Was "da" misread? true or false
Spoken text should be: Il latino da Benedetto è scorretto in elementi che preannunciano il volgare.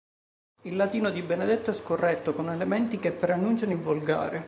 true